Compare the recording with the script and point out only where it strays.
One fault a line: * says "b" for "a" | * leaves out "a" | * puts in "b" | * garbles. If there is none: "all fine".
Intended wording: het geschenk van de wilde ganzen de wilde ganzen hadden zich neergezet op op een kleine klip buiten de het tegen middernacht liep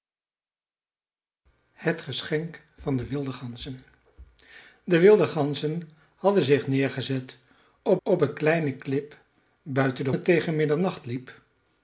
all fine